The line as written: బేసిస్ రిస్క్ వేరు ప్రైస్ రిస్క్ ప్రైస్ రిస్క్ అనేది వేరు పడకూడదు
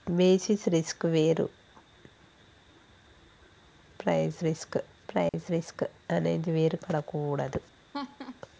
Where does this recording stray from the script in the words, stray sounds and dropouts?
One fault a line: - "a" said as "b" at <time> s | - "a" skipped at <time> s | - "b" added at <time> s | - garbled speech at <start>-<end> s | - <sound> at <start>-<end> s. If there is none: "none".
- dropout at 5.3-5.3 s
- laugh at 7.9-8.4 s